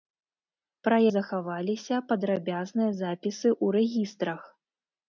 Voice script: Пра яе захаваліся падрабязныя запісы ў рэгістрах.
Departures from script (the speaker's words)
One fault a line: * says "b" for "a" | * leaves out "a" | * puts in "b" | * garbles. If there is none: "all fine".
* leaves out "яе"